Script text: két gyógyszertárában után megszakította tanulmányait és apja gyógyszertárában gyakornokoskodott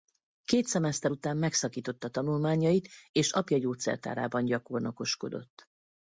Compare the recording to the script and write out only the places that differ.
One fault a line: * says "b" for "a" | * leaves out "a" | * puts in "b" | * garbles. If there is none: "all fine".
* says "szemeszter" for "gyógyszertárában"